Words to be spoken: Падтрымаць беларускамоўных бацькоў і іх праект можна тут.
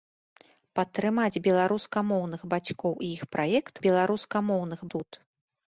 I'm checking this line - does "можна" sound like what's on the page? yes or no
no